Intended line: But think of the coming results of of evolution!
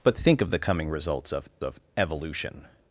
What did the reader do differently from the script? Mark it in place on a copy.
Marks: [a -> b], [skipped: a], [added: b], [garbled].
But think of the coming results of of evolution!